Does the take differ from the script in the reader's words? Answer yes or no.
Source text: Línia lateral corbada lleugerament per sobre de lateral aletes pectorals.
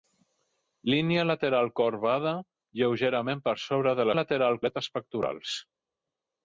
no